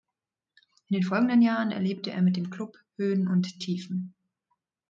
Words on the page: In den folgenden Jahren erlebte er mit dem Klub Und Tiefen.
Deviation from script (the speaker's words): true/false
true